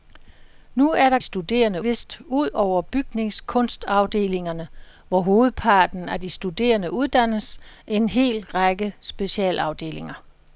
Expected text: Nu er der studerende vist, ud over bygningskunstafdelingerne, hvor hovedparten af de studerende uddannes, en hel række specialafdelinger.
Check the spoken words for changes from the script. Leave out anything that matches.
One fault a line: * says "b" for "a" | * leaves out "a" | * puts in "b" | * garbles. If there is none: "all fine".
all fine